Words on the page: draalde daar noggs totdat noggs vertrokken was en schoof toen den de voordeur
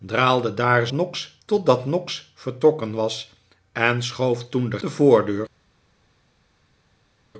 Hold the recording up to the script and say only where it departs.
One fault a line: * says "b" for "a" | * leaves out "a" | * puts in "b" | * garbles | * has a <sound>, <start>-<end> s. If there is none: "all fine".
all fine